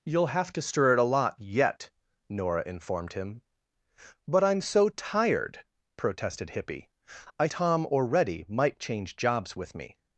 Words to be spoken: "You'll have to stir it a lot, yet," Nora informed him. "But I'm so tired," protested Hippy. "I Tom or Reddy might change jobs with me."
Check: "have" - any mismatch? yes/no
no